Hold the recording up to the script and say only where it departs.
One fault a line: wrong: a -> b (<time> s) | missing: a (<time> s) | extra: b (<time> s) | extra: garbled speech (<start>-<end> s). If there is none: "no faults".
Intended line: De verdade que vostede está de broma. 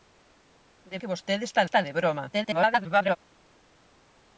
missing: verdade (1.0 s)
extra: está (1.6 s)
extra: garbled speech (2.3-3.2 s)